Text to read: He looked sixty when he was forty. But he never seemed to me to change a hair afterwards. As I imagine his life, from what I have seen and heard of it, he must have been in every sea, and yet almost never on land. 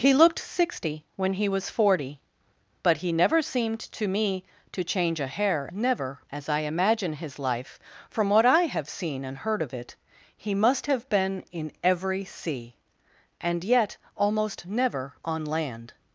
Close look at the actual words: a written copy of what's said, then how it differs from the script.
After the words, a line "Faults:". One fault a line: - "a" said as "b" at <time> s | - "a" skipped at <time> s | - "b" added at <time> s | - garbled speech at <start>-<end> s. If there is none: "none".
He looked sixty when he was forty. But he never seemed to me to change a hair never. As I imagine his life, from what I have seen and heard of it, he must have been in every sea, and yet almost never on land.
Faults:
- "afterwards" said as "never" at 5.7 s